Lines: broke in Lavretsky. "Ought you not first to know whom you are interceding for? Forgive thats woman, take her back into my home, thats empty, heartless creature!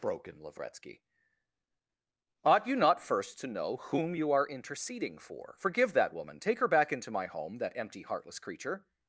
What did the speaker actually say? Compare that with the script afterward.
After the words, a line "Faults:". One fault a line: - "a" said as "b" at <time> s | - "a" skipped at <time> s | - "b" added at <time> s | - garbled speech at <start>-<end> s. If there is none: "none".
broke in Lavretsky. "Ought you not first to know whom you are interceding for? Forgive that woman, take her back into my home, that empty, heartless creature!
Faults:
- "thats" said as "that" at 5.9 s
- "thats" said as "that" at 7.6 s